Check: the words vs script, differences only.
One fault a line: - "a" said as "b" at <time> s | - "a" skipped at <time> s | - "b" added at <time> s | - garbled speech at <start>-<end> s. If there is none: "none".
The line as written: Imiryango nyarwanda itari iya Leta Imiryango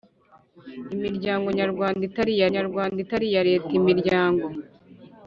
- "nyarwanda itari iya" added at 2.6 s